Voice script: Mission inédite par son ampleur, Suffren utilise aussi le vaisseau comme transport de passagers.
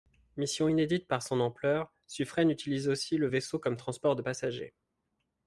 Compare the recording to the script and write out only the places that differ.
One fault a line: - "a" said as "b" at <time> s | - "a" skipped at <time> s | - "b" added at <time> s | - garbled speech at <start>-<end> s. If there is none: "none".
none